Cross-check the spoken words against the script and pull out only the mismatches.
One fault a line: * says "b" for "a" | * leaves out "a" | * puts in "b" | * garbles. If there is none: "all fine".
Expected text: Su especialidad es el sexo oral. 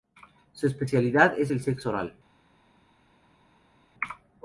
all fine